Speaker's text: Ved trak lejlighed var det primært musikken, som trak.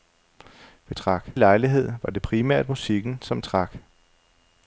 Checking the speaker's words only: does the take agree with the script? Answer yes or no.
yes